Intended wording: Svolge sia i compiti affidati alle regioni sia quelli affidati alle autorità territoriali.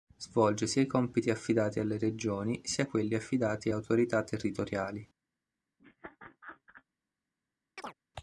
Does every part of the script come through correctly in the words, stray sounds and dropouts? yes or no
no